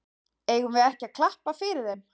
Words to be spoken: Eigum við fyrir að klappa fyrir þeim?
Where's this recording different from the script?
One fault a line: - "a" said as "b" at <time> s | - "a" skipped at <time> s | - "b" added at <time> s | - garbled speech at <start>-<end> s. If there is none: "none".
- "fyrir" said as "ekki" at 0.9 s